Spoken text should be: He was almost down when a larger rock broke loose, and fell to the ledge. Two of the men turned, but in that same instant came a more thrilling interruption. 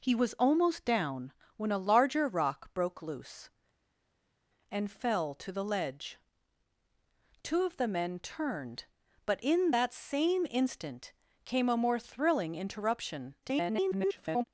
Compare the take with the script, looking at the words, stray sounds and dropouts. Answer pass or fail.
fail